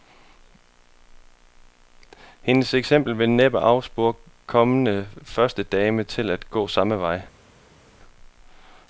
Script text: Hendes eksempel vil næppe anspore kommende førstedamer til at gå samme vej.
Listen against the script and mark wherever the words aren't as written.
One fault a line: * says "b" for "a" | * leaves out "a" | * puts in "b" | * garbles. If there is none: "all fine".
all fine